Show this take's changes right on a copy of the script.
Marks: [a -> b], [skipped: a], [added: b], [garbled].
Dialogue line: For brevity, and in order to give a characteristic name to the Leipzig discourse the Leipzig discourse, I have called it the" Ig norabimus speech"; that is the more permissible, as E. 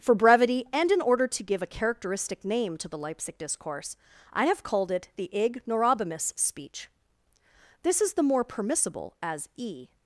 For brevity, and in order to give a characteristic name to the Leipzig discourse [skipped: the Leipzig discourse,] I have called it the" Ig norabimus speech"; [that -> this] is the more permissible, as E.